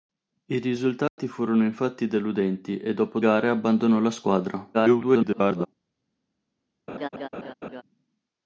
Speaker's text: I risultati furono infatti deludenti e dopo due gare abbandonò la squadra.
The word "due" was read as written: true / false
false